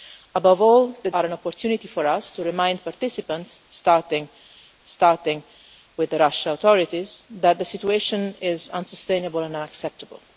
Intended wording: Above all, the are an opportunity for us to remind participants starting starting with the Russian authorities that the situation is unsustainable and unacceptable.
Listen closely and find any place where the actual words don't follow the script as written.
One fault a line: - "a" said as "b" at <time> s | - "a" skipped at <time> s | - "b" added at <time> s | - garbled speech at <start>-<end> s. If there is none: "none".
none